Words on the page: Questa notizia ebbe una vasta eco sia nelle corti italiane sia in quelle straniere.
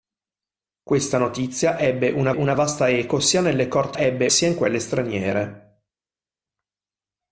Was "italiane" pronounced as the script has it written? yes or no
no